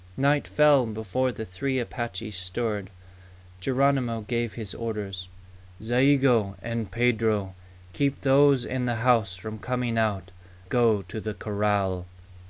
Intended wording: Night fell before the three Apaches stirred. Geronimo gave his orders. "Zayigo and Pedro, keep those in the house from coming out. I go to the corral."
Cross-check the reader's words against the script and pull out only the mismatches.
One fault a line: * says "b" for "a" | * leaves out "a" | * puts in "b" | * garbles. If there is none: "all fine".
* leaves out "I"